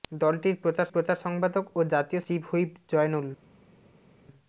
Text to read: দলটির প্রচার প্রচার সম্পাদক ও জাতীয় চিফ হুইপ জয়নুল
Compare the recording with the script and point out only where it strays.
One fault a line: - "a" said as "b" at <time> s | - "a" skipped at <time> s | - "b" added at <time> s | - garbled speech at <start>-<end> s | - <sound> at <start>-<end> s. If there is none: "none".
none